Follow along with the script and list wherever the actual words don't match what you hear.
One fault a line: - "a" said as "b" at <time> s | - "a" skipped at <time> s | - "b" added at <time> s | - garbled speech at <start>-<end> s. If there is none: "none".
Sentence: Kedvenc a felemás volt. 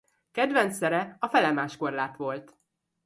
- "szere" added at 0.8 s
- "korlát" added at 1.7 s